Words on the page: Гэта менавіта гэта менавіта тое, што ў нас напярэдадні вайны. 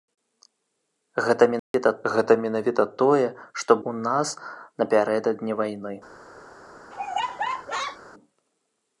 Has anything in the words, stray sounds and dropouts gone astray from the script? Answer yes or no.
yes